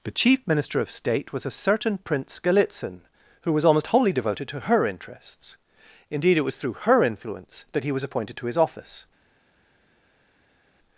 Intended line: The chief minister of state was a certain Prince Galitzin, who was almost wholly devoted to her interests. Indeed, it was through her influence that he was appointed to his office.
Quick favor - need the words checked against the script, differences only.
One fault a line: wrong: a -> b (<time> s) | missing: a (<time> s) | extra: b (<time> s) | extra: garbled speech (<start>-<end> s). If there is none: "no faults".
no faults